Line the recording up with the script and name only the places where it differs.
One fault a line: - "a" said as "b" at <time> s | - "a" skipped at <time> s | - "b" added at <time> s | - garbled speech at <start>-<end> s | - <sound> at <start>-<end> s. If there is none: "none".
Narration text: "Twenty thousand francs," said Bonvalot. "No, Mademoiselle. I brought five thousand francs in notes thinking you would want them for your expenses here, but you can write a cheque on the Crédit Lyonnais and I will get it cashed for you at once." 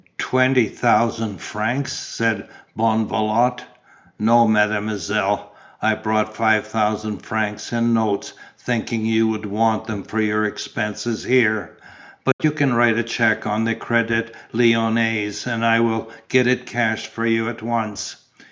- dropout at 12.3-12.4 s